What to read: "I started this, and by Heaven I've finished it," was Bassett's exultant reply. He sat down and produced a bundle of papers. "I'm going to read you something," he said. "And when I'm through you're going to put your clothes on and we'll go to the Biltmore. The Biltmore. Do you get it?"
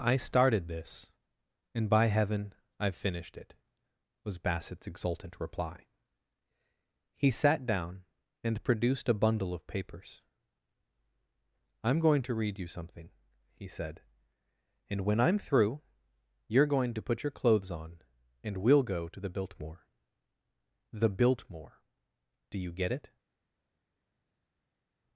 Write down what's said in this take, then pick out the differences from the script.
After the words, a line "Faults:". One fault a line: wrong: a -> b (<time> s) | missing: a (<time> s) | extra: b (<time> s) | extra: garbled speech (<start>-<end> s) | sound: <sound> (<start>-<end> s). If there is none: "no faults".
"I started this, and by Heaven I've finished it," was Bassett's exultant reply. He sat down and produced a bundle of papers. "I'm going to read you something," he said. "And when I'm through you're going to put your clothes on and we'll go to the Biltmore. The Biltmore. Do you get it?"
Faults:
no faults